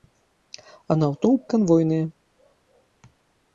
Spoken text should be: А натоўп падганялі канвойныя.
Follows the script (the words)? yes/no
no